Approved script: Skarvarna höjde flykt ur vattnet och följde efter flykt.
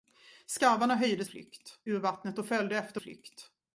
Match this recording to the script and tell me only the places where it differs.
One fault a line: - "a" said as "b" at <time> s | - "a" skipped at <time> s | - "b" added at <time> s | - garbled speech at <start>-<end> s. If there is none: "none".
none